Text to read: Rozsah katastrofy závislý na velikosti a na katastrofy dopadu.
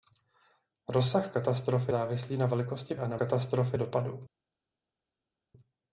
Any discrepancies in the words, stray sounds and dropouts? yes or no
no